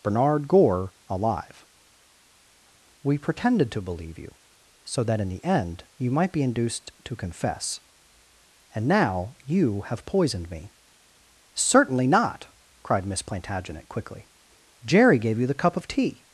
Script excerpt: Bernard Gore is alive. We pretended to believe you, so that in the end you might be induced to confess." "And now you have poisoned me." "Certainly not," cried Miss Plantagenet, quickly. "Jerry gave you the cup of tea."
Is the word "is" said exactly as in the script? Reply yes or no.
no